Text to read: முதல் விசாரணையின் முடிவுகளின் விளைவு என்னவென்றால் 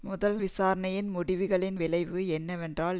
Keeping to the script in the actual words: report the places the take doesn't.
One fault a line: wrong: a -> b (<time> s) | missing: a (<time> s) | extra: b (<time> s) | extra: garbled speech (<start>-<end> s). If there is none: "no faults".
no faults